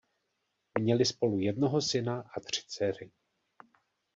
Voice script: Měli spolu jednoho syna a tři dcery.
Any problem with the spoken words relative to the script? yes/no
no